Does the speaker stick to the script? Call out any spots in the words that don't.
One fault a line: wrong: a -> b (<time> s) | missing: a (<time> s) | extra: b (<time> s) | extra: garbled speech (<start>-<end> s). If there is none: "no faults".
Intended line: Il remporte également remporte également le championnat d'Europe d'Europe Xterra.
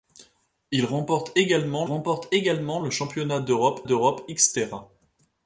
no faults